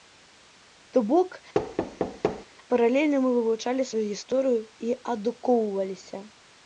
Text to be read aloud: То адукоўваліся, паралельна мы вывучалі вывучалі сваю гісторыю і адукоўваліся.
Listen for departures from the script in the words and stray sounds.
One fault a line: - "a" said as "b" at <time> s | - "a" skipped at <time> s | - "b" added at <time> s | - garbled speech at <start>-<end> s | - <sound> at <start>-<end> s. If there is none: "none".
- "адукоўваліся" said as "бок" at 1.1 s
- thud at 1.5-2.5 s
- "вывучалі" skipped at 3.9 s